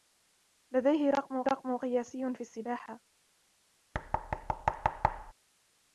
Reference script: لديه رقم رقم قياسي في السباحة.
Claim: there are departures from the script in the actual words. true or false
false